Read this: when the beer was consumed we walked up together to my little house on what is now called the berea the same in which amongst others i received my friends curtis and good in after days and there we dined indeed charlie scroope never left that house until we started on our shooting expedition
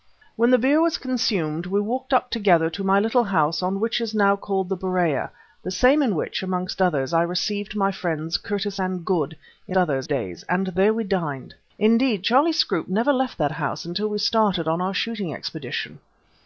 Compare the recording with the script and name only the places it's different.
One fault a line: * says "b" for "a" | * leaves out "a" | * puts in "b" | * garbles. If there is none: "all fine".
* says "others" for "after"